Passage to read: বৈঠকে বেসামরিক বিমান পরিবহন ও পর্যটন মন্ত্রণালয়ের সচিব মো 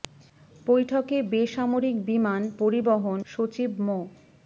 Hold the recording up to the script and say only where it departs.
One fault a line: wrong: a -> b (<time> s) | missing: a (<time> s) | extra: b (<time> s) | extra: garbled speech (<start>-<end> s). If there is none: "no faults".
missing: ও পর্যটন মন্ত্রণালয়ের (3.2 s)